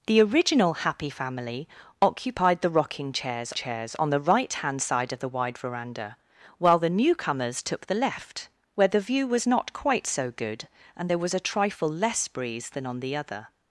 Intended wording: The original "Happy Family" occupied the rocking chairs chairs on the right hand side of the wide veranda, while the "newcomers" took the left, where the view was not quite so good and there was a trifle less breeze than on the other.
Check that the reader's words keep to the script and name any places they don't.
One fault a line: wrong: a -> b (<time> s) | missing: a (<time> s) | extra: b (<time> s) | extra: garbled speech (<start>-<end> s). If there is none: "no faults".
no faults